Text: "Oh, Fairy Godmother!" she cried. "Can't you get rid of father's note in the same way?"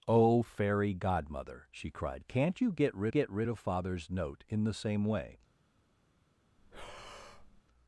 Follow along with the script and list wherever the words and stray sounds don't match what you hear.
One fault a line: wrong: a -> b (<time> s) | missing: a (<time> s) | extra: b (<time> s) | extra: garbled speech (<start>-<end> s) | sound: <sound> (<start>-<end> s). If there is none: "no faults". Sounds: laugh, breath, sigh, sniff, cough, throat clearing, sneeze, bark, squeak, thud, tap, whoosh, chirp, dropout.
extra: get rid (3.1 s)
sound: breath (6.6-7.6 s)